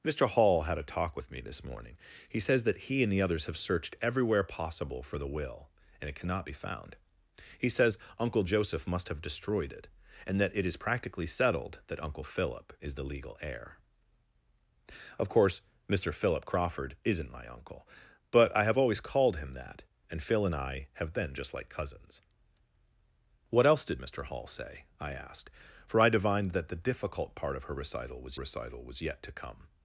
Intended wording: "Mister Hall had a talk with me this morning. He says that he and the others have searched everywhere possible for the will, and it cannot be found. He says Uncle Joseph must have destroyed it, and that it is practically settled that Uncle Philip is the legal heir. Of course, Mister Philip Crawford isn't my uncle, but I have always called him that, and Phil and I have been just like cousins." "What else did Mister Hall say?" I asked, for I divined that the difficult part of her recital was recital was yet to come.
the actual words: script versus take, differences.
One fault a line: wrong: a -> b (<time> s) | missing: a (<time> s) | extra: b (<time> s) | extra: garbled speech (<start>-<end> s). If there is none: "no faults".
no faults